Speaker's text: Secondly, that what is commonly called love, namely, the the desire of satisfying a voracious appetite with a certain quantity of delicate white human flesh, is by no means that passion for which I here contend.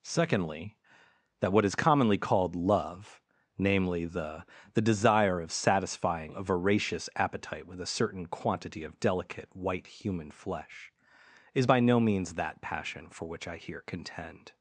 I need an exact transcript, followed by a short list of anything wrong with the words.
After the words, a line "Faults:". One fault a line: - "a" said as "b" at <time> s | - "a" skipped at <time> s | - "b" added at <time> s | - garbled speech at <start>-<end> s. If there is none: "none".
Secondly, that what is commonly called love, namely, the the desire of satisfying a voracious appetite with a certain quantity of delicate white human flesh, is by no means that passion for which I here contend.
Faults:
none